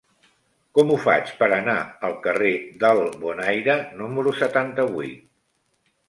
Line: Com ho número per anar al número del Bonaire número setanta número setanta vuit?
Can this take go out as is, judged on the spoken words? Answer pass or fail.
fail